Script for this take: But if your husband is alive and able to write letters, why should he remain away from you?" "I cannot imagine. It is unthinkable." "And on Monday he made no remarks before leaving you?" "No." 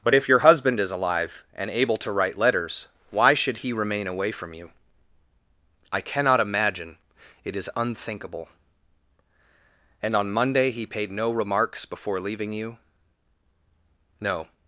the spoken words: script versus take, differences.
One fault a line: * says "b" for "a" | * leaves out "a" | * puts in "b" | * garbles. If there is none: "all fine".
* says "paid" for "made"